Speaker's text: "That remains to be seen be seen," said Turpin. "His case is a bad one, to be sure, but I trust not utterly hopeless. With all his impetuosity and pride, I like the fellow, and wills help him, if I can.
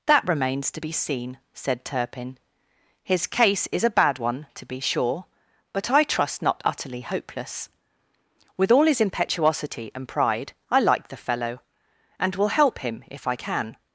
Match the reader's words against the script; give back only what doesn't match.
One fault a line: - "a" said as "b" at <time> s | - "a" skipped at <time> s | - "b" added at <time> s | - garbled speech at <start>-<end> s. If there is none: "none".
- "be seen" skipped at 1.4 s
- "wills" said as "will" at 12.4 s